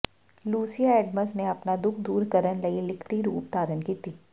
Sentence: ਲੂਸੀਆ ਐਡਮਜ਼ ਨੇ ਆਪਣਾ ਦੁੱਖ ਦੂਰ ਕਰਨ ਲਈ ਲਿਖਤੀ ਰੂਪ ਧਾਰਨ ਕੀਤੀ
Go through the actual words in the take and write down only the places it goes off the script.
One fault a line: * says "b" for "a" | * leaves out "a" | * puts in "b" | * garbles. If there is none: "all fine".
all fine